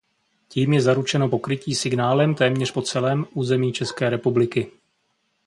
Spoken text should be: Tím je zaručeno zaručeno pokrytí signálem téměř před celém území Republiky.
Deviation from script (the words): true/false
true